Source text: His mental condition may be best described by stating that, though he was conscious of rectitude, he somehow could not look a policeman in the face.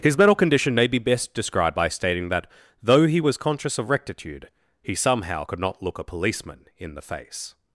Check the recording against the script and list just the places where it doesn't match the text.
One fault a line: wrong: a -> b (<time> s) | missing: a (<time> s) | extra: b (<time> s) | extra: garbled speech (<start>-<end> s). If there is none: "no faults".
no faults